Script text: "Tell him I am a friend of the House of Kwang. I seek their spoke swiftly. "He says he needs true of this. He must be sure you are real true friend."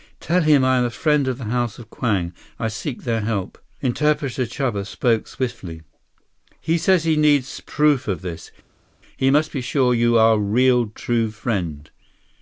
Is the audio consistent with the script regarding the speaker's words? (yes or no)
no